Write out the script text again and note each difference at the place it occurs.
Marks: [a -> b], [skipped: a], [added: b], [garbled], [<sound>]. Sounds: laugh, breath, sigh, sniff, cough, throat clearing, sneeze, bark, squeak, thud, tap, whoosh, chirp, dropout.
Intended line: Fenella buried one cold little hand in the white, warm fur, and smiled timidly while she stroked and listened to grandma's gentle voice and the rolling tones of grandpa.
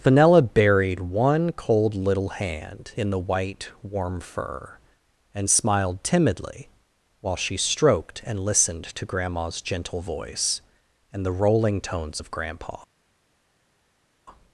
Fenella buried one cold little hand in the white, warm fur, and smiled timidly while she stroked and listened to grandma's gentle voice and the rolling tones of grandpa.